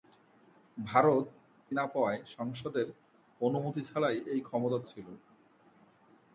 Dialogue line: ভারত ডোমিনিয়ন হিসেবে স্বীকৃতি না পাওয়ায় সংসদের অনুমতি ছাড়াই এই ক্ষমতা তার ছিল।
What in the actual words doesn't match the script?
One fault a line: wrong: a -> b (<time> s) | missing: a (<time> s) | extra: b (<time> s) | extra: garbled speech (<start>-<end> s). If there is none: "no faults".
missing: ডোমিনিয়ন হিসেবে স্বীকৃতি (1.2 s)
missing: তার (4.8 s)